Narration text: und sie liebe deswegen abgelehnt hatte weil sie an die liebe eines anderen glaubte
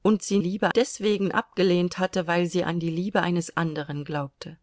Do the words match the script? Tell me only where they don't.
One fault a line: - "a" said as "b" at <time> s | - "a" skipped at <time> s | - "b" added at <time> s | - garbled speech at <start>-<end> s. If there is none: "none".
none